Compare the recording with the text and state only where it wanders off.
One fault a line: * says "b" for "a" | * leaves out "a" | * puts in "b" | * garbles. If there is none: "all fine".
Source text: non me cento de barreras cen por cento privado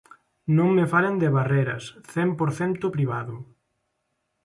* says "falen" for "cento"